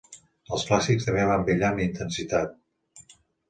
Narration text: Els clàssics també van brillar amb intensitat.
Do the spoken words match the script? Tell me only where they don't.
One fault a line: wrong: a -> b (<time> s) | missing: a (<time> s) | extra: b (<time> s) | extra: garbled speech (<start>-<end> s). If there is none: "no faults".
no faults